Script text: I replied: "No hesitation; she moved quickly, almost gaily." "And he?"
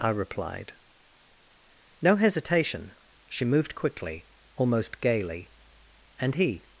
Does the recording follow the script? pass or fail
pass